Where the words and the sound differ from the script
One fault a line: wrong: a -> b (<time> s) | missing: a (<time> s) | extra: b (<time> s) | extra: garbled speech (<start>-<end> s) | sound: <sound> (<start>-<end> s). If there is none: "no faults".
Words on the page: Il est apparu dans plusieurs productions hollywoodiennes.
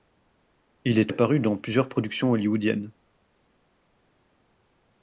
no faults